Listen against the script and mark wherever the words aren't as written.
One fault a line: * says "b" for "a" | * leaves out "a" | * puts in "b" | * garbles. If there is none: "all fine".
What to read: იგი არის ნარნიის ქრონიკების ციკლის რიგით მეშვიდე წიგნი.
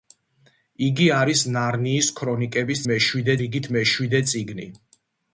* says "მეშვიდე" for "ციკლის"